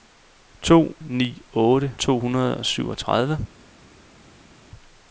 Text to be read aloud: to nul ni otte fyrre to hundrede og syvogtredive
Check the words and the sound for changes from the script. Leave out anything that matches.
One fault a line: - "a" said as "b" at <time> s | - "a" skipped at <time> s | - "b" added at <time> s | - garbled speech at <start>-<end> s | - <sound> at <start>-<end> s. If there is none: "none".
- "nul" skipped at 0.9 s
- "fyrre" skipped at 1.9 s